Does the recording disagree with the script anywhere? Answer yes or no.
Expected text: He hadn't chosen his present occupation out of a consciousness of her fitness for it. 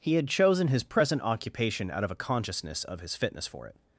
yes